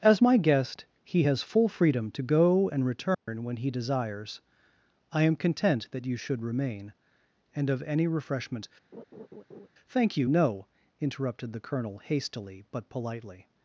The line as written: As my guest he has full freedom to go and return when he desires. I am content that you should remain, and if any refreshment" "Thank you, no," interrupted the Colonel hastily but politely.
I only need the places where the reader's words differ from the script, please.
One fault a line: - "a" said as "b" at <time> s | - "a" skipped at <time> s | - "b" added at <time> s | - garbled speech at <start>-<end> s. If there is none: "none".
- "if" said as "of" at 7.7 s